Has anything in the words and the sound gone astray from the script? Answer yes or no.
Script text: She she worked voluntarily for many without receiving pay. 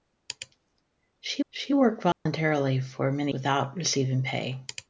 yes